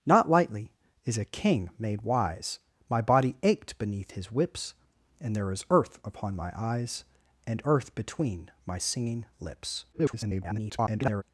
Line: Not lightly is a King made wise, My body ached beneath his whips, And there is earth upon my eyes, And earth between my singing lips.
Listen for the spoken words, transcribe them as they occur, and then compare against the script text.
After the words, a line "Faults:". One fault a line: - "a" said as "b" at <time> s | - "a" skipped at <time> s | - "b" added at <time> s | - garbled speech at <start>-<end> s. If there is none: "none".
Not lightly is a King made wise, My body ached beneath his whips, And there is earth upon my eyes, And earth between my singing lips. [garbled]
Faults:
- garbled speech at 9.9-11.2 s